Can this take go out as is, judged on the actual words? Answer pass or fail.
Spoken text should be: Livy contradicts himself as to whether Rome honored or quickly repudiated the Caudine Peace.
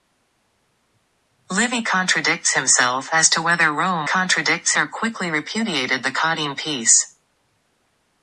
fail